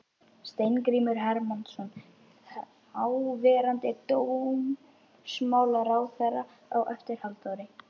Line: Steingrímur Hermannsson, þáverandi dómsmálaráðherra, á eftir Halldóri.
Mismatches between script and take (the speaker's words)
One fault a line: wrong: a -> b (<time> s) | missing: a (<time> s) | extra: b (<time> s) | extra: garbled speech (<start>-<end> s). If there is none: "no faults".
no faults